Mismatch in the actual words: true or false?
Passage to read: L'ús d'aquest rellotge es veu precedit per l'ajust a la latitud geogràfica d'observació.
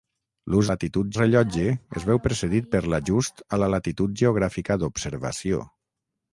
true